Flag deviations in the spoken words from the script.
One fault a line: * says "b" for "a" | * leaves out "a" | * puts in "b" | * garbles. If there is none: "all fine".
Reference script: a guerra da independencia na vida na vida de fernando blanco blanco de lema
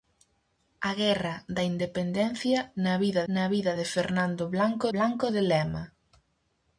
all fine